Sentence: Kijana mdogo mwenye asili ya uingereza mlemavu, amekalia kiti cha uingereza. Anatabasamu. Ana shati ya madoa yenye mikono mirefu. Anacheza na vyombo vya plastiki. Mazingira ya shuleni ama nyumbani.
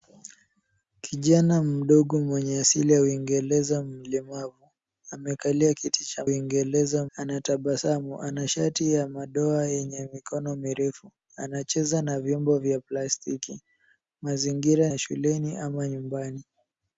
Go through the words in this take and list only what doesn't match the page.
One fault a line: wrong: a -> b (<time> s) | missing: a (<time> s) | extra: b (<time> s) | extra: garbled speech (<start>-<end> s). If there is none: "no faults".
no faults